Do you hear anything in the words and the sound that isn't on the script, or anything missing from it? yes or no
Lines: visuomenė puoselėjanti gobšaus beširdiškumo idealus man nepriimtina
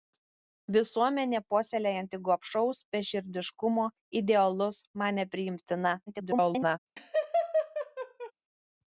yes